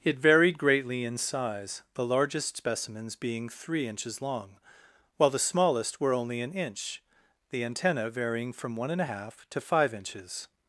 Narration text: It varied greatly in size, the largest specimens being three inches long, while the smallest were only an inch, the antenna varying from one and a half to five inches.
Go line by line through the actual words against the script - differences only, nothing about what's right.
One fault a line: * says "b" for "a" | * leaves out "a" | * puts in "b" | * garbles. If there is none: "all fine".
all fine